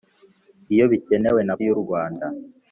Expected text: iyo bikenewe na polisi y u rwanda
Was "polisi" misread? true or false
true